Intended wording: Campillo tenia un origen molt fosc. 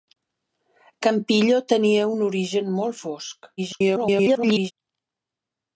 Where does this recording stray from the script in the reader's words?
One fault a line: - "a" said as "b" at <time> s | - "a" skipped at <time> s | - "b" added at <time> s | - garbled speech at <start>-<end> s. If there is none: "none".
- garbled speech at 3.6-4.7 s